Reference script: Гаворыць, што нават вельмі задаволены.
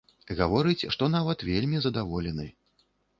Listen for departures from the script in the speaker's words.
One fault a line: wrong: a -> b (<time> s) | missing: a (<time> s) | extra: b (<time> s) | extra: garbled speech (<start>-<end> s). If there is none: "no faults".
no faults